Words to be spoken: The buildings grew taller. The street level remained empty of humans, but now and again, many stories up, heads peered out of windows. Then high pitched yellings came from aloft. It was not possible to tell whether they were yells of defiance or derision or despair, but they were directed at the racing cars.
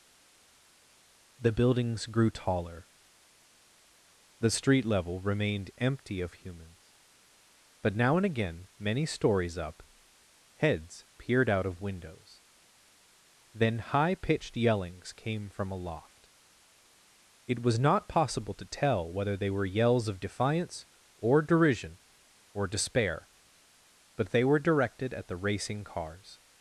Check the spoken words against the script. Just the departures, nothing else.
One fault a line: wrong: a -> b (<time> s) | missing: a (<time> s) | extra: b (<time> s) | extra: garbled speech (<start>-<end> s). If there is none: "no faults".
no faults